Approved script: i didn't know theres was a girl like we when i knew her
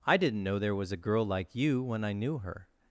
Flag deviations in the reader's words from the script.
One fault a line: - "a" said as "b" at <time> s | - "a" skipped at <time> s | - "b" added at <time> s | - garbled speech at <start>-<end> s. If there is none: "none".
- "theres" said as "there" at 0.6 s
- "we" said as "you" at 1.5 s